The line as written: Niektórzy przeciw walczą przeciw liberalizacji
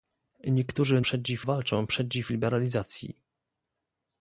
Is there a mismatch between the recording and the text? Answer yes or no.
no